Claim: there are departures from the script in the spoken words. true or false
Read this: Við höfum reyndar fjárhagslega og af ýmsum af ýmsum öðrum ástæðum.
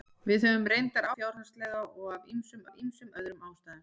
false